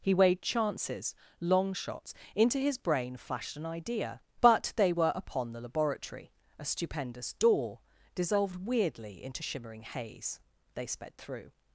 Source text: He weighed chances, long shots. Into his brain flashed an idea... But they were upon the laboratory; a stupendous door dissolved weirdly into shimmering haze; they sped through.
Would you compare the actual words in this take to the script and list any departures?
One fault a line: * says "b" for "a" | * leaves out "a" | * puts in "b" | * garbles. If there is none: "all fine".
all fine